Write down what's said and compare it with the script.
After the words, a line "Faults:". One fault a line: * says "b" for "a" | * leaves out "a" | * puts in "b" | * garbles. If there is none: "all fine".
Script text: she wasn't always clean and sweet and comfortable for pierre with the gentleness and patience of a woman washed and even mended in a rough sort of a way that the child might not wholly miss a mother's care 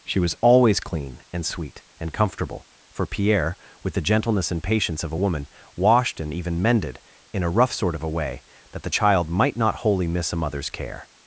she was always clean and sweet and comfortable for pierre with the gentleness and patience of a woman washed and even mended in a rough sort of a way that the child might not wholly miss a mother's care
Faults:
* says "was" for "wasn't"